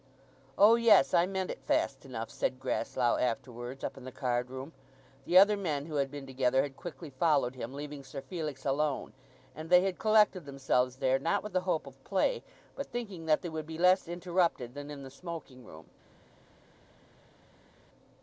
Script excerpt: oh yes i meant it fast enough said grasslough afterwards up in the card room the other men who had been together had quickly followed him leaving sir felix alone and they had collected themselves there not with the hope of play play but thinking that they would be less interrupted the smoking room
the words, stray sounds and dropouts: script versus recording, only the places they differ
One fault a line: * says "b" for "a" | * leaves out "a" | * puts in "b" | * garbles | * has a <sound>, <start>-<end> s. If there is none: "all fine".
* leaves out "play"
* puts in "than in"